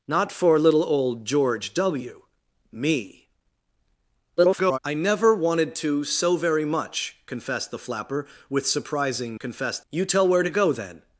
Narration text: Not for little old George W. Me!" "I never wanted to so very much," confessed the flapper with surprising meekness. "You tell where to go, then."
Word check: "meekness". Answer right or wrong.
wrong